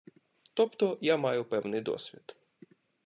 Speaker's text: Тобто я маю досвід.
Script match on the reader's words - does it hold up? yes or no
no